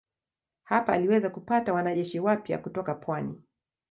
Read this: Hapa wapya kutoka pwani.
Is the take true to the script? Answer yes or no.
no